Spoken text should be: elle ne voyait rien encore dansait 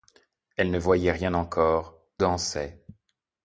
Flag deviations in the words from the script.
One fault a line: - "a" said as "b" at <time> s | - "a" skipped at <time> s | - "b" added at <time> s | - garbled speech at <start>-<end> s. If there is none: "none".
none